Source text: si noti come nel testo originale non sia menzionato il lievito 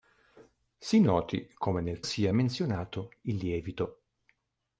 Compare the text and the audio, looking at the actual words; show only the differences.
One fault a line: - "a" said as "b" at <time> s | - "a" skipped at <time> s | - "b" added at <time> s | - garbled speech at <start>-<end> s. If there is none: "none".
- "testo originale non" skipped at 2.0 s